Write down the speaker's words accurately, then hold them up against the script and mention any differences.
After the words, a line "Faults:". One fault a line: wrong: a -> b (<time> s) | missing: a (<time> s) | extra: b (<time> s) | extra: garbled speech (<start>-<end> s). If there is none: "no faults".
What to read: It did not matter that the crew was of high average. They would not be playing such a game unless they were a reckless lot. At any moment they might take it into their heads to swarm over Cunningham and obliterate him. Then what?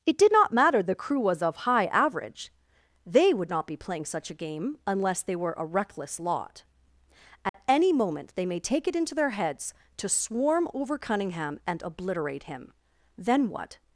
It did not matter the crew was of high average. They would not be playing such a game unless they were a reckless lot. At any moment they may take it into their heads to swarm over Cunningham and obliterate him. Then what?
Faults:
missing: that (0.8 s)
wrong: might -> may (8.4 s)